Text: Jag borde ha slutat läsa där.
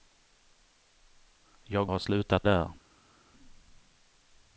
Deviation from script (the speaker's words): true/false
true